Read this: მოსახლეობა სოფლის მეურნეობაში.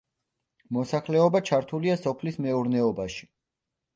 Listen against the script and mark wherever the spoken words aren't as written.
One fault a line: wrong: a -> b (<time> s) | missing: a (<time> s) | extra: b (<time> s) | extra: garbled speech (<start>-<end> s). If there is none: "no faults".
extra: ჩართულია (1.5 s)